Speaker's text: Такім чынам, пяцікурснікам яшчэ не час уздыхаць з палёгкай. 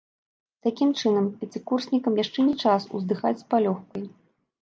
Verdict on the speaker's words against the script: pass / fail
pass